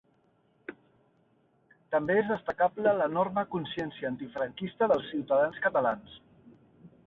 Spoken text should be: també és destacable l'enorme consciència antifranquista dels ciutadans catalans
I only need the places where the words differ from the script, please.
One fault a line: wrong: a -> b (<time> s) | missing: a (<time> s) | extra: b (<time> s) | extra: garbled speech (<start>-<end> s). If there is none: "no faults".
no faults